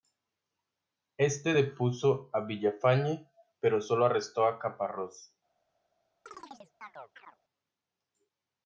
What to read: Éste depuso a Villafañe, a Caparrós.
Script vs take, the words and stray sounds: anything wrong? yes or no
yes